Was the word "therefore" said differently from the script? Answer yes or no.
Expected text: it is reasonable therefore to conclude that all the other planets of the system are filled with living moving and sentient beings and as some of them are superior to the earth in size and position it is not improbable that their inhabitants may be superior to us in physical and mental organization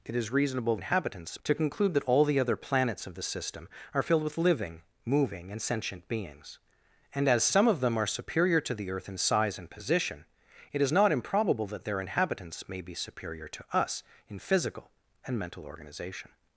yes